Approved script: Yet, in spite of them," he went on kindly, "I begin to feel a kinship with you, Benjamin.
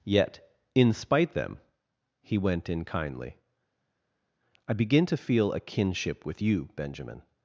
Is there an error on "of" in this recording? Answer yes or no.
yes